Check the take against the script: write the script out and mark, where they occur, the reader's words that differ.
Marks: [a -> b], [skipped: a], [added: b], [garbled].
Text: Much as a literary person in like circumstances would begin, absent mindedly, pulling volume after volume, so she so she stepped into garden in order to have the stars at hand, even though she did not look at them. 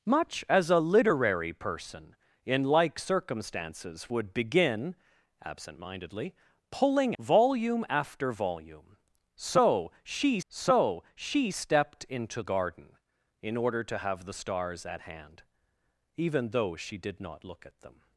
Much as a literary person in like circumstances would begin, absent mindedly, pulling volume after volume, so she so she stepped into garden in order to have the stars at hand, even though she did not look at them.